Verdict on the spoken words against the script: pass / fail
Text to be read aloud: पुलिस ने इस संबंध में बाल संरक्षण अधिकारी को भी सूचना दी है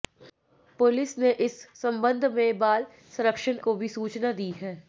fail